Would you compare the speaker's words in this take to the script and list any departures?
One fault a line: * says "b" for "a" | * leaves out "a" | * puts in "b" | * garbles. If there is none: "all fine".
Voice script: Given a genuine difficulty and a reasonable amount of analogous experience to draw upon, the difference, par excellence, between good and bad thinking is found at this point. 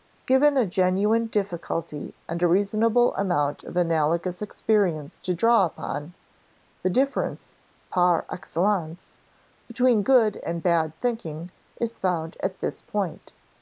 all fine